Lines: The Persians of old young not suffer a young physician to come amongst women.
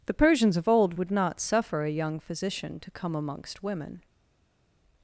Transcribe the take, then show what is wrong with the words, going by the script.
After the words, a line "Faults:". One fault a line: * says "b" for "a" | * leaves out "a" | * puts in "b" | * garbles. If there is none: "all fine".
The Persians of old would not suffer a young physician to come amongst women.
Faults:
* says "would" for "young"